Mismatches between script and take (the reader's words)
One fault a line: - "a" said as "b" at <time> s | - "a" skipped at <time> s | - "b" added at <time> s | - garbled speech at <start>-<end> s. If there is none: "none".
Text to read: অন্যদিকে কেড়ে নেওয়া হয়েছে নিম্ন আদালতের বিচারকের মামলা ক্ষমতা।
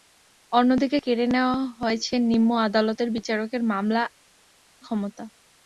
none